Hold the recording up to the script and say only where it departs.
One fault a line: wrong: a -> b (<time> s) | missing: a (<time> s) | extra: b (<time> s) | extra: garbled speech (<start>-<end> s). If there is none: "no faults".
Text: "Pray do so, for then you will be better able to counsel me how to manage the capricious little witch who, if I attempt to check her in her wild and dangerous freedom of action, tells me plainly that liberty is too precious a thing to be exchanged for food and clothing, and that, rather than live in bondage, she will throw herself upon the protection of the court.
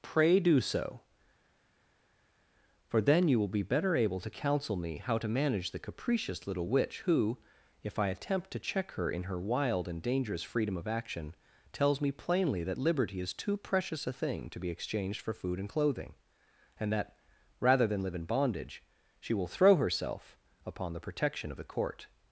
no faults